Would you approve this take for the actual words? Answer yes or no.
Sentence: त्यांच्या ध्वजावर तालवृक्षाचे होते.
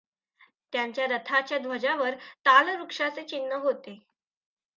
no